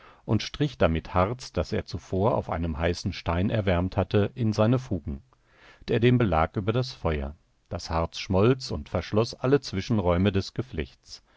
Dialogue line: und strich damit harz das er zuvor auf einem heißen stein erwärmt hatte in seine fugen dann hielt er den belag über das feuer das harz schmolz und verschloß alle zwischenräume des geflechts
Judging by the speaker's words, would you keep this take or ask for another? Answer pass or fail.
fail